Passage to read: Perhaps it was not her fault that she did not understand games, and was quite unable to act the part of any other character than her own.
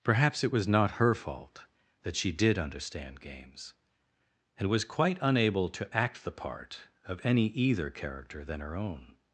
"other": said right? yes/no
no